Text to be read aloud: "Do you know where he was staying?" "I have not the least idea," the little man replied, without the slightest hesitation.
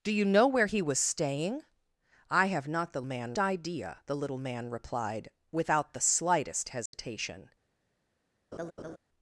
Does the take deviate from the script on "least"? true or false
true